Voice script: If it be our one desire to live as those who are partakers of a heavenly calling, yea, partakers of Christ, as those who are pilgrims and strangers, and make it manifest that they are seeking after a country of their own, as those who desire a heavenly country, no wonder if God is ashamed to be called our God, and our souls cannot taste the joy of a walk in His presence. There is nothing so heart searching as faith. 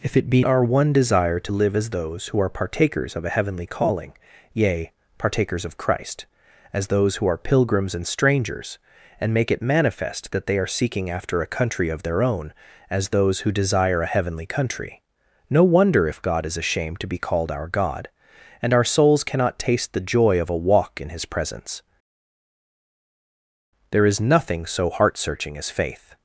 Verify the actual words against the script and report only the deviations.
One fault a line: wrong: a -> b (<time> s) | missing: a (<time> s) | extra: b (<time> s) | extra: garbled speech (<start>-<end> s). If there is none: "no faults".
no faults